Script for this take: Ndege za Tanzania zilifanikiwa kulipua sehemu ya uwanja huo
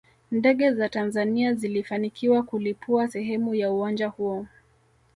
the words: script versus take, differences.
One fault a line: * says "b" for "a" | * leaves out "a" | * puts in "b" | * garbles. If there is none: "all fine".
all fine